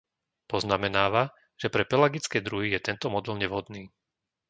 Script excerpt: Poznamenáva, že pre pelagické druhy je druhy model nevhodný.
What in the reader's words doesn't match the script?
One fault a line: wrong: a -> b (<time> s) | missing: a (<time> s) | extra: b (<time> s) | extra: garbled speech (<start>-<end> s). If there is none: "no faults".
wrong: druhy -> tento (2.8 s)